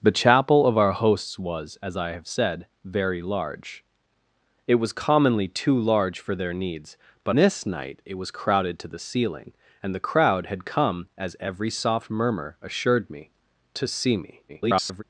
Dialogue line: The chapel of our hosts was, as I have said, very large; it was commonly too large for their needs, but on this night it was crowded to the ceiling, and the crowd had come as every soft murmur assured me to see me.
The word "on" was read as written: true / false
false